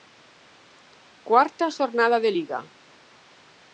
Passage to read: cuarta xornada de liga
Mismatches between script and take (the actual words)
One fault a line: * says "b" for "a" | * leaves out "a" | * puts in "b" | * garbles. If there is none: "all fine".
all fine